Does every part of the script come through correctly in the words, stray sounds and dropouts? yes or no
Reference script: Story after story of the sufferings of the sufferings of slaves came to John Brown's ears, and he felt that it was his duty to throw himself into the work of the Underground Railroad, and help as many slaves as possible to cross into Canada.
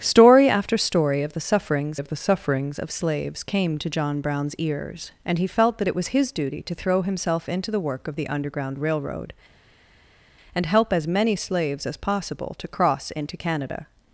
yes